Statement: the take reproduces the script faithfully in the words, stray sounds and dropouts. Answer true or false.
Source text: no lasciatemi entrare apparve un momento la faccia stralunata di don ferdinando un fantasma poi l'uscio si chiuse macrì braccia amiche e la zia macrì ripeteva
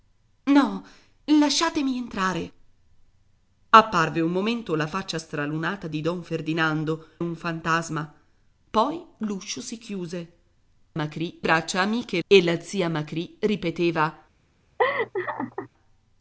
false